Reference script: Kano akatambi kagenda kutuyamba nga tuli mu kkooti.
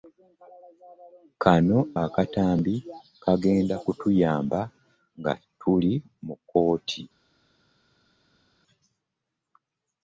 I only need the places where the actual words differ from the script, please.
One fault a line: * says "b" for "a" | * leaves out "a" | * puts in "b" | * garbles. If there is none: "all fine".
all fine